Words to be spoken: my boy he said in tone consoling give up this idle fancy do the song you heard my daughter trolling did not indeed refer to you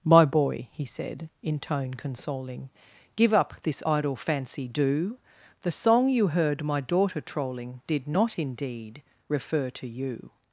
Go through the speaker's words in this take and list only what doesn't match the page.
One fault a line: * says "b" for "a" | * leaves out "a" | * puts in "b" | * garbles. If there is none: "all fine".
all fine